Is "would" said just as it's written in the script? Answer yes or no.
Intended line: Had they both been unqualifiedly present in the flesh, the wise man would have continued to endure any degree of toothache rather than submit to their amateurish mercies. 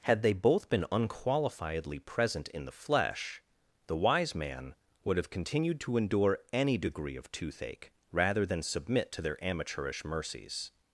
yes